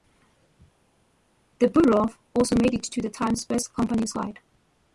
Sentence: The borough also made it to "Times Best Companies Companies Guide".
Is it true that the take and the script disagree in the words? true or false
true